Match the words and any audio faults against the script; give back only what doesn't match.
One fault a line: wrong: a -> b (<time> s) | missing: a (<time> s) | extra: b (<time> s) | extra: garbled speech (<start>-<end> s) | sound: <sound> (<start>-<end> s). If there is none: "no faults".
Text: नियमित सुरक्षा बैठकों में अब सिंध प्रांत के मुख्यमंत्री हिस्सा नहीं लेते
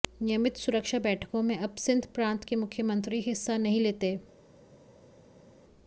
no faults